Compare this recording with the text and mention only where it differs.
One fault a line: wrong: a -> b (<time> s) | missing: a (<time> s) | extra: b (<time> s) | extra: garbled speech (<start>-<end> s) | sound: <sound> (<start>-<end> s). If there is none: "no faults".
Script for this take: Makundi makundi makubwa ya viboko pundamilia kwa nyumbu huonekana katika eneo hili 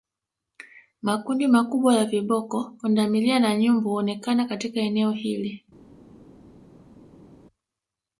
missing: makundi (1.5 s)
wrong: kwa -> na (3.4 s)